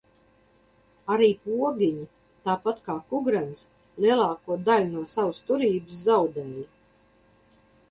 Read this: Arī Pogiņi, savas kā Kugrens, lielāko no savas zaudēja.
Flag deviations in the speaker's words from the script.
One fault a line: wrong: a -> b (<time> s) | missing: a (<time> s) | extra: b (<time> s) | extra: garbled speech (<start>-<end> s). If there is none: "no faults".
wrong: savas -> tāpat (2.5 s)
extra: daļu (4.7 s)
extra: turības (5.5 s)